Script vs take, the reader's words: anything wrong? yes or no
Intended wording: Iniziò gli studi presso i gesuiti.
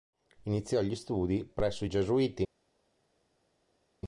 no